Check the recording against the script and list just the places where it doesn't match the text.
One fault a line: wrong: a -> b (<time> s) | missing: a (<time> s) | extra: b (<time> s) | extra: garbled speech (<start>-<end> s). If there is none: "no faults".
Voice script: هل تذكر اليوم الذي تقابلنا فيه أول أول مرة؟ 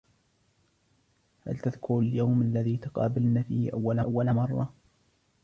no faults